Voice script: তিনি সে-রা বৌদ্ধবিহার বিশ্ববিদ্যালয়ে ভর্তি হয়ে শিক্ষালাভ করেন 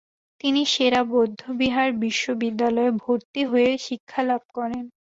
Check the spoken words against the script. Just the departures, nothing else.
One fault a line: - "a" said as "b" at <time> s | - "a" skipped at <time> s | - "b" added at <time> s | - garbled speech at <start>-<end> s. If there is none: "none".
none